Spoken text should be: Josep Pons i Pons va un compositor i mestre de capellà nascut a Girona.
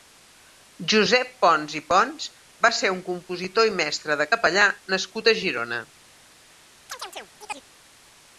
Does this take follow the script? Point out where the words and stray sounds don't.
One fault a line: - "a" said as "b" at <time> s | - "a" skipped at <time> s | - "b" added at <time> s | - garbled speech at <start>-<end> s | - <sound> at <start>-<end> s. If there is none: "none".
- "ser" added at 2.8 s
- chirp at 6.9-7.7 s